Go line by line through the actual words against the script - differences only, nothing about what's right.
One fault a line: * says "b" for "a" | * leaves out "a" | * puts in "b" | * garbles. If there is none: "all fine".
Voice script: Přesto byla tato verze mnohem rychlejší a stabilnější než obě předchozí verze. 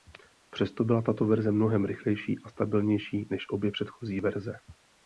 all fine